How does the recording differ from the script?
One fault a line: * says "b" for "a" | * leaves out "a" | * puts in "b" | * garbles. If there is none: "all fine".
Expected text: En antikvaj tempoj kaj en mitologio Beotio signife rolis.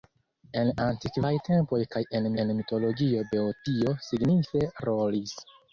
* puts in "en"